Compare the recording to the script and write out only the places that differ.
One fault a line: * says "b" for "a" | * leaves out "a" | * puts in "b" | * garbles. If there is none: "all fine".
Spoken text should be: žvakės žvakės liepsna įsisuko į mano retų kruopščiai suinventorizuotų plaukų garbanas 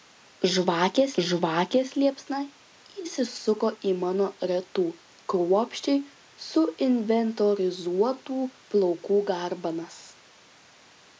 all fine